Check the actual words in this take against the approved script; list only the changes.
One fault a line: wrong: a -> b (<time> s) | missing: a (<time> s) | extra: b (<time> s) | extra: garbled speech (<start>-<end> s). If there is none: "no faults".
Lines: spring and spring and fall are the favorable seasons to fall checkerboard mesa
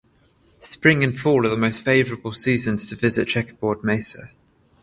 missing: spring and (1.1 s)
extra: most (1.6 s)
wrong: fall -> visit (2.9 s)